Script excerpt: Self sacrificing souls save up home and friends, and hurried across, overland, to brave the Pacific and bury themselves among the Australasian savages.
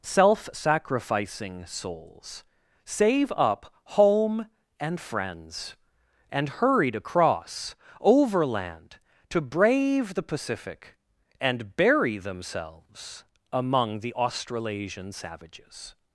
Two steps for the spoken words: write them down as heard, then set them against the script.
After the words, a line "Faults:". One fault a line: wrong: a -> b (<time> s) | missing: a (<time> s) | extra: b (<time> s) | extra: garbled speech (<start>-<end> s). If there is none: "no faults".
Self sacrificing souls save up home and friends, and hurried across, overland, to brave the Pacific and bury themselves among the Australasian savages.
Faults:
no faults